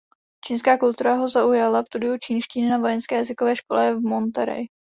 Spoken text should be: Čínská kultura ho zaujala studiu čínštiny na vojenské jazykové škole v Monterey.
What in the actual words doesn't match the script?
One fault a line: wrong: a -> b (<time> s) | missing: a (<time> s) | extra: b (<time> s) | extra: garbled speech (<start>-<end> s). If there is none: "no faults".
no faults